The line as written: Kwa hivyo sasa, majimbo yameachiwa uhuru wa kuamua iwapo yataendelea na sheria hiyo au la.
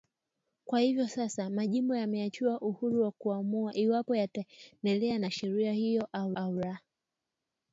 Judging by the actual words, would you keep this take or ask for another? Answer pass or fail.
fail